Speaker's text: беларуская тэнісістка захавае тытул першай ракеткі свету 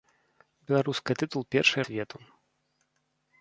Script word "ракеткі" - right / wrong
wrong